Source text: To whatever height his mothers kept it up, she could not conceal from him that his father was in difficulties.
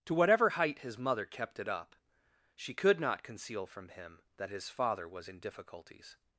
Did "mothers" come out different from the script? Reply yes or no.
yes